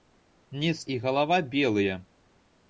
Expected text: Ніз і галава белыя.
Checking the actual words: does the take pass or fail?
pass